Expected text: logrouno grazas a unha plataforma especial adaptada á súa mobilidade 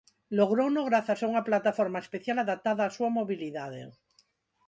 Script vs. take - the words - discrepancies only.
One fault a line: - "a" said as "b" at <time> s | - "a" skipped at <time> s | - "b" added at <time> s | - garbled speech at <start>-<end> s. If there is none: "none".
none